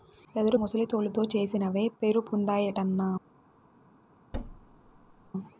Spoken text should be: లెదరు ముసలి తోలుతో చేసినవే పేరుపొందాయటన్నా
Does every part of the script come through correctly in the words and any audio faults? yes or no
no